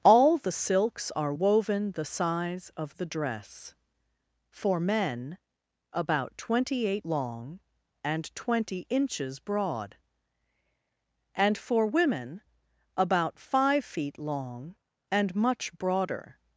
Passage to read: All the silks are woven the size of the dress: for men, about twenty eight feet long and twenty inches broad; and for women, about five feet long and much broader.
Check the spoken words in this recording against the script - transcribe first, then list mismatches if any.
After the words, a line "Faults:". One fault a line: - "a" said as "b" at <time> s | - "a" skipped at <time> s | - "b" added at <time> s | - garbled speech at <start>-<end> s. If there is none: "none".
All the silks are woven the size of the dress: for men, about twenty eight long and twenty inches broad; and for women, about five feet long and much broader.
Faults:
- "feet" skipped at 7.0 s